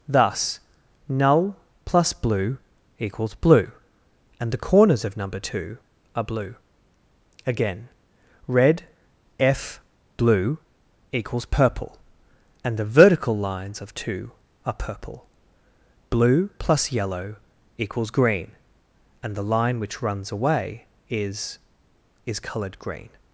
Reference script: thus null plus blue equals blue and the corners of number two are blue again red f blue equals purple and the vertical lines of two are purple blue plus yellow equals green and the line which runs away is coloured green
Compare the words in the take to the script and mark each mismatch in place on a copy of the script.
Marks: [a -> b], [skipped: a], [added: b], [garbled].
thus null plus blue equals blue and the corners of number two are blue again red f blue equals purple and the vertical lines of two are purple blue plus yellow equals green and the line which runs away is [added: is] coloured green